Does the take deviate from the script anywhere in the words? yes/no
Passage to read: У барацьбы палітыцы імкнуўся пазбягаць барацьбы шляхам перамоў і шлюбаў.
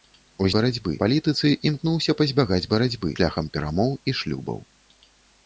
no